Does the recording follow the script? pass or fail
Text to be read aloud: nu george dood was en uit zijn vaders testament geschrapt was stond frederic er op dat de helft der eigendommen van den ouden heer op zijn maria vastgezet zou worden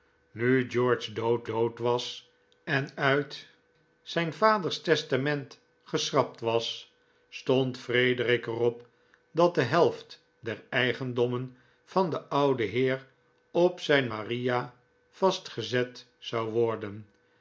fail